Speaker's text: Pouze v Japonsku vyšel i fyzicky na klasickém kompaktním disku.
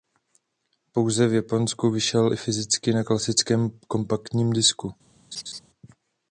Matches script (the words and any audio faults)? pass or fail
fail